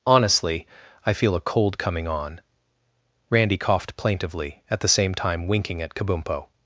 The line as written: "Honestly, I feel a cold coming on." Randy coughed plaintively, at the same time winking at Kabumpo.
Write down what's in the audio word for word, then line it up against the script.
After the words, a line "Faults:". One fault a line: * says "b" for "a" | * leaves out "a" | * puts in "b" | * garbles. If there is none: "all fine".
"Honestly, I feel a cold coming on." Randy coughed plaintively, at the same time winking at Kabumpo.
Faults:
all fine